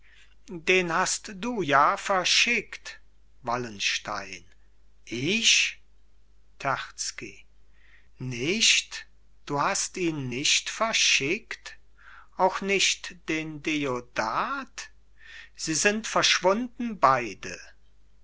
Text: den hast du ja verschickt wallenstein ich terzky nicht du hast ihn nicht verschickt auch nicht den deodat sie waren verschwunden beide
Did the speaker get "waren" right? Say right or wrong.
wrong